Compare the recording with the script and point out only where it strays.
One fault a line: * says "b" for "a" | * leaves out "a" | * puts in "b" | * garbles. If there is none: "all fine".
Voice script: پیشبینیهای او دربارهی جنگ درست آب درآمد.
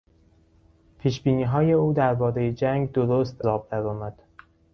all fine